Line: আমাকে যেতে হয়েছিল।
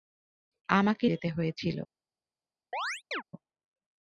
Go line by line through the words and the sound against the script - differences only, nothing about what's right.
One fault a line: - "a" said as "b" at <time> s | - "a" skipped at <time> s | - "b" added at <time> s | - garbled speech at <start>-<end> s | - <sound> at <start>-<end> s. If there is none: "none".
- chirp at 2.7-3.2 s